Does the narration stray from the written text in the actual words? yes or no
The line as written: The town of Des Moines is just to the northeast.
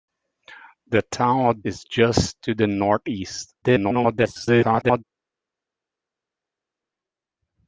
yes